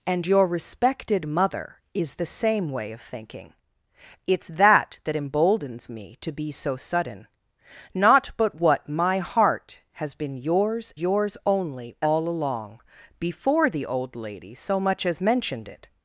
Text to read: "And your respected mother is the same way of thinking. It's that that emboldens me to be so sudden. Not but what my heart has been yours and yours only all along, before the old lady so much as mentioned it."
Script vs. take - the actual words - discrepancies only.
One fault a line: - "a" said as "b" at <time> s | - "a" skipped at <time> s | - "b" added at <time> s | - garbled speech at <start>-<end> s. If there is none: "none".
- "and" skipped at 10.9 s